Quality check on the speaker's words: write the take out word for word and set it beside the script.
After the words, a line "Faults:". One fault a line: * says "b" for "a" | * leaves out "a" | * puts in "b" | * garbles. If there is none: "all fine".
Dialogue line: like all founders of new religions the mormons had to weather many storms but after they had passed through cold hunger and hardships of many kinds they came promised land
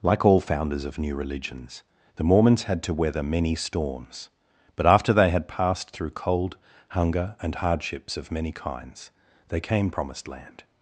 like all founders of new religions the mormons had to weather many storms but after they had passed through cold hunger and hardships of many kinds they came promised land
Faults:
all fine